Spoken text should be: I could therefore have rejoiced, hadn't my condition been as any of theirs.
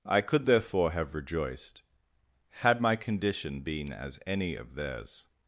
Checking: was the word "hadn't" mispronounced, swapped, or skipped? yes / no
yes